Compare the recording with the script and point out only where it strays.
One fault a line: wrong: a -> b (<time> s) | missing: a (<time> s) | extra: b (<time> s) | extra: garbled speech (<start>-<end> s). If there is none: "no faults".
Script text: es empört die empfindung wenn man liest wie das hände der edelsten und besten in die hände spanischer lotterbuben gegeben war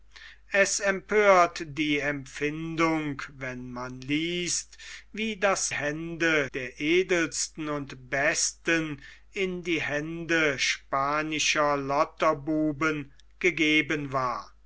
no faults